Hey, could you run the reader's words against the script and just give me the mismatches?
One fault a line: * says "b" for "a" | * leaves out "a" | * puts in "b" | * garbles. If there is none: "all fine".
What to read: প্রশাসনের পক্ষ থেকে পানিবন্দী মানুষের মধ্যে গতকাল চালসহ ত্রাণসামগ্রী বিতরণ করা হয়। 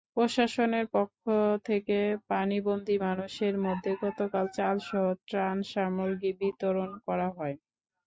all fine